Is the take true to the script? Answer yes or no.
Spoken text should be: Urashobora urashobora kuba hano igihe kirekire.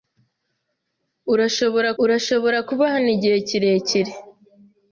yes